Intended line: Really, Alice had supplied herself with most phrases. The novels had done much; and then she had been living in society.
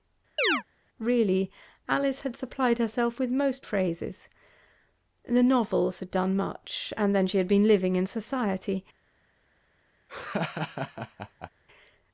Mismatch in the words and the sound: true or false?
true